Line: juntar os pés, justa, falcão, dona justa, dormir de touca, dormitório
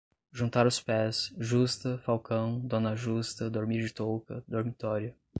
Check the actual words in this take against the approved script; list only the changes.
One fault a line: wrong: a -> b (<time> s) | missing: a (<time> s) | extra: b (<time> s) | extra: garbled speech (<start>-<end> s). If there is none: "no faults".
no faults